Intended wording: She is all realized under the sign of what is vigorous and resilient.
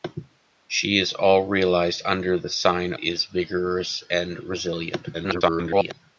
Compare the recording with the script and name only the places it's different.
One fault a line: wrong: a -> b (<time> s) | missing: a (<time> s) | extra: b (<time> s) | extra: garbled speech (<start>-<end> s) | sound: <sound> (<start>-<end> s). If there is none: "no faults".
missing: of what (2.9 s)
extra: garbled speech (5.1-5.9 s)